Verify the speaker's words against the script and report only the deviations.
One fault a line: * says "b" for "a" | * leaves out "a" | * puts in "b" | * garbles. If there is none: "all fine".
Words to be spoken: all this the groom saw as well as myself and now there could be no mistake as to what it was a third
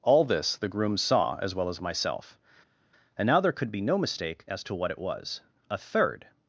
all fine